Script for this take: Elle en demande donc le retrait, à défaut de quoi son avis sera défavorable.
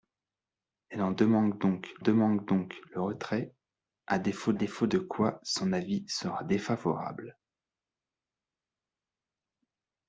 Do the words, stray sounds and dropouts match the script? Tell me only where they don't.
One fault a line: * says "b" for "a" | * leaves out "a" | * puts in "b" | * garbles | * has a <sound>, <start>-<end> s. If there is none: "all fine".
* puts in "demande donc"
* puts in "défaut"